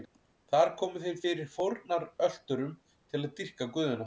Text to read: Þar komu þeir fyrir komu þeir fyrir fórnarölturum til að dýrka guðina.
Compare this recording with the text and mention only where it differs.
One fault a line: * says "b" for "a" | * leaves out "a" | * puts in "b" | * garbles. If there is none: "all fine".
* leaves out "komu þeir fyrir"